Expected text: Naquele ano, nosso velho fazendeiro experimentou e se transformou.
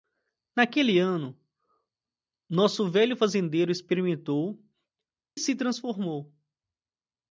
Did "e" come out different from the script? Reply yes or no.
yes